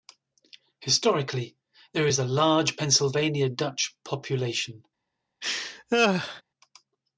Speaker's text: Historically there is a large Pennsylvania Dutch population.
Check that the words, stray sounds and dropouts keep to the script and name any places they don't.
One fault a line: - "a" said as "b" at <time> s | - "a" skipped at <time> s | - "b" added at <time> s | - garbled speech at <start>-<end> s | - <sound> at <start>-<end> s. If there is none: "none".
- laugh at 5.4-6.4 s